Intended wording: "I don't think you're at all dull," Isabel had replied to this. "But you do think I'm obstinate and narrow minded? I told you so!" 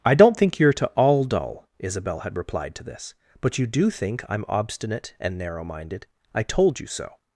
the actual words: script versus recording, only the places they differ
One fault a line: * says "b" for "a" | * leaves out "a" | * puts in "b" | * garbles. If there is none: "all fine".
* says "to" for "at"